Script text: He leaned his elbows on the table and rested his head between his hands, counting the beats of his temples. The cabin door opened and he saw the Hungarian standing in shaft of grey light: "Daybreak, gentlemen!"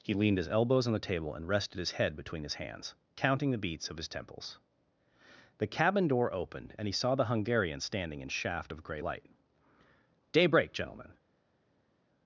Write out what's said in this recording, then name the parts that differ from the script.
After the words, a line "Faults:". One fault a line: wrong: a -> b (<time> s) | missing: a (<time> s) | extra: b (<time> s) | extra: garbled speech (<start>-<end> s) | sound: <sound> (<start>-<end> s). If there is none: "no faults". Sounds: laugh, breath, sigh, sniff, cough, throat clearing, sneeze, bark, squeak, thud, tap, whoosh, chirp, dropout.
He leaned his elbows on the table and rested his head between his hands, counting the beats of his temples. The cabin door opened and he saw the Hungarian standing in shaft of grey light: "Daybreak, gentlemen!"
Faults:
no faults